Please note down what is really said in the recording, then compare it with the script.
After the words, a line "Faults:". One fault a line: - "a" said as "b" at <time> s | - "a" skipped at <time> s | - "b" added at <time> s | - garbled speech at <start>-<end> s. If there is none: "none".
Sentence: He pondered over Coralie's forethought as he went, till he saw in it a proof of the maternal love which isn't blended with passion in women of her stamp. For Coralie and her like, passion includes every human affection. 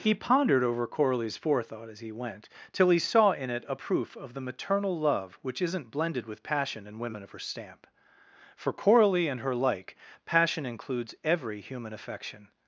He pondered over Coralie's forethought as he went, till he saw in it a proof of the maternal love which isn't blended with passion in women of her stamp. For Coralie and her like, passion includes every human affection.
Faults:
none